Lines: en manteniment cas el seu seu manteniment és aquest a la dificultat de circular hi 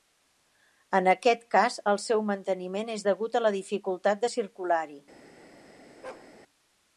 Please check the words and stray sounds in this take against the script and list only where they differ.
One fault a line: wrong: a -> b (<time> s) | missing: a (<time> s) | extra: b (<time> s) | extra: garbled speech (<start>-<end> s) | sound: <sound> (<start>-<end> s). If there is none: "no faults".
wrong: manteniment -> aquest (1.1 s)
missing: seu (2.2 s)
wrong: aquest -> degut (3.1 s)
sound: bark (6.0-6.3 s)